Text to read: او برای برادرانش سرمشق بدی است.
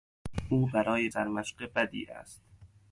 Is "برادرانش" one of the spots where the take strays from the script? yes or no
yes